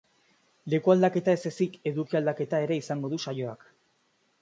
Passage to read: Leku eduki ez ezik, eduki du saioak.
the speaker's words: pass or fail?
fail